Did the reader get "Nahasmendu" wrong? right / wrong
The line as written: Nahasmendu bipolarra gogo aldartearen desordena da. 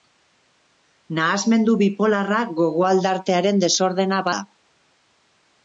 right